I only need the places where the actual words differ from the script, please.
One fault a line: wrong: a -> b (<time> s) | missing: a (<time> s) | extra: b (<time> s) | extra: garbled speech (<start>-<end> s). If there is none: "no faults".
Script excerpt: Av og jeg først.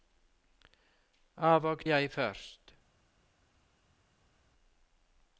no faults